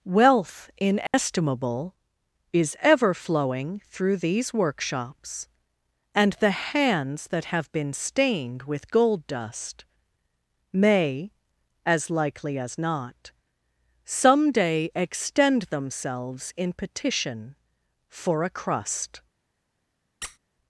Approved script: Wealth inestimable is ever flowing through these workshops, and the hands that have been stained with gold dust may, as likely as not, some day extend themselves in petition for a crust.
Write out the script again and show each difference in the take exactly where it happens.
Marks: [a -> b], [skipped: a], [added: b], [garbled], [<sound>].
Wealth inestimable [dropout] is ever flowing through these workshops, and the hands that have been stained with gold dust may, as likely as not, some day extend themselves in petition for a crust. [squeak]